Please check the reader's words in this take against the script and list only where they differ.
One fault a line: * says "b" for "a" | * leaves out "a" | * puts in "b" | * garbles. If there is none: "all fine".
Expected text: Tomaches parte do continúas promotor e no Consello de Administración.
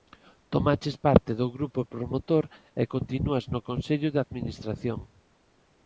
* says "grupo" for "continúas"
* puts in "continúas"